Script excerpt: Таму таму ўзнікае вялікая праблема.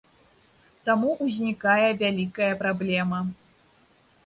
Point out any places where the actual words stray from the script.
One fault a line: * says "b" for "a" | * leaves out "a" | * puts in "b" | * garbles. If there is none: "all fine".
* leaves out "таму"